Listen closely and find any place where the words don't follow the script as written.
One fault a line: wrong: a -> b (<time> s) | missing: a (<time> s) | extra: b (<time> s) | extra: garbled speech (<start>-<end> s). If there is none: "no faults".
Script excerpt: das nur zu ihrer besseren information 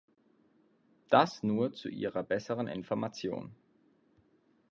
no faults